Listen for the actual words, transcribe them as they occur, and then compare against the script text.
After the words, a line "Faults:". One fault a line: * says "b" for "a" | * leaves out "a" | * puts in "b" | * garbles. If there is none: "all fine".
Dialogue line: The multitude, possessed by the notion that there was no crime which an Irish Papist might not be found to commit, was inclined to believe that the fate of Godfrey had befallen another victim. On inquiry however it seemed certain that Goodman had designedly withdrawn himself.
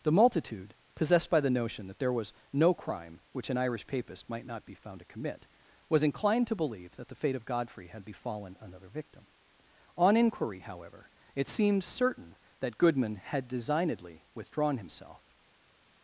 The multitude, possessed by the notion that there was no crime which an Irish Papist might not be found to commit, was inclined to believe that the fate of Godfrey had befallen another victim. On inquiry however it seemed certain that Goodman had designedly withdrawn himself.
Faults:
all fine